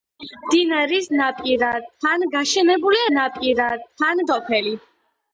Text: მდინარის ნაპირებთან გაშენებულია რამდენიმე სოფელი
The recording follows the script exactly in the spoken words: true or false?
false